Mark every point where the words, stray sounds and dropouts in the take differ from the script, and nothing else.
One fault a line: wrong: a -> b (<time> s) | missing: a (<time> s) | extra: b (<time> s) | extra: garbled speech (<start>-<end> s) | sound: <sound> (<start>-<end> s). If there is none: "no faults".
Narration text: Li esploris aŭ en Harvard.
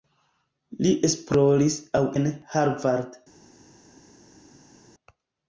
no faults